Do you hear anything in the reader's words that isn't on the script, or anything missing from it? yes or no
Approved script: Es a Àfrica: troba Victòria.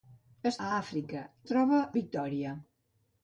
no